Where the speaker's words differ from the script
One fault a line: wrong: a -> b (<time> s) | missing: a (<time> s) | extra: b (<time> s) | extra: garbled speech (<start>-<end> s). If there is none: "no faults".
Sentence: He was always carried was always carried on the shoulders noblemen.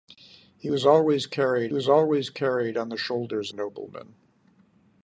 no faults